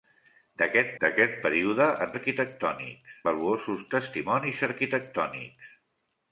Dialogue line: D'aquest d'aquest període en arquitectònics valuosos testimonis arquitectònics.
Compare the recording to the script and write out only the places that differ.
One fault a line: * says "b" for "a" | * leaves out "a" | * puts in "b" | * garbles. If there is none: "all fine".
all fine